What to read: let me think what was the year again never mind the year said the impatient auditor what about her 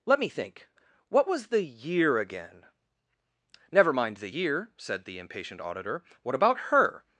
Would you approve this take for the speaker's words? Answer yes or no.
yes